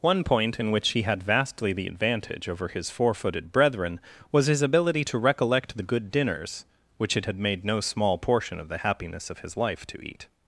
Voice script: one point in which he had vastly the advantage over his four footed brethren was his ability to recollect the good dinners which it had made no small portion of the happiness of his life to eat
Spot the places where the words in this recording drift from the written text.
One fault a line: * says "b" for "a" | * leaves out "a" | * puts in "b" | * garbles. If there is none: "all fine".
all fine